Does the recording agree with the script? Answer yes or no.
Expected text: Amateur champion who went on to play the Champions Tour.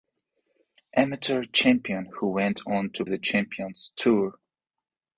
no